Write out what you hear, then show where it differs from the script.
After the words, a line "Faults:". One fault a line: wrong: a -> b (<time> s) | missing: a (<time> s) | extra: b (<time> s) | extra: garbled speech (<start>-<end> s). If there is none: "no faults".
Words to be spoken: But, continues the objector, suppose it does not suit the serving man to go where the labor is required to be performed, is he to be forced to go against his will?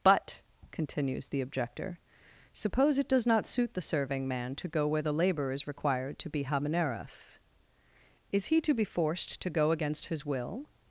But, continues the objector, suppose it does not suit the serving man to go where the labor is required to be habaneras, is he to be forced to go against his will?
Faults:
wrong: performed -> habaneras (6.4 s)